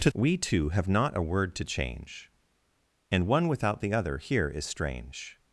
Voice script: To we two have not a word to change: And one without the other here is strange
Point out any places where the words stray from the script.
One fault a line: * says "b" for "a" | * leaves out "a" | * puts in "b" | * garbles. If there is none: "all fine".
all fine